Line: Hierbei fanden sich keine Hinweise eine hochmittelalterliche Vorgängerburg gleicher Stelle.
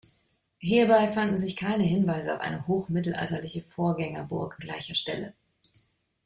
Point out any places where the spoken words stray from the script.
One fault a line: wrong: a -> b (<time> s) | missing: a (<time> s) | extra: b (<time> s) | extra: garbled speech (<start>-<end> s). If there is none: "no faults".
no faults